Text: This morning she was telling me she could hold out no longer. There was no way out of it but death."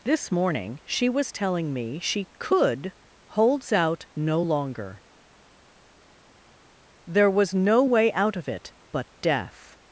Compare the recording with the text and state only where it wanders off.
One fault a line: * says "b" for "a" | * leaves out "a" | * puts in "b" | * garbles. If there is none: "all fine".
* says "holds" for "hold"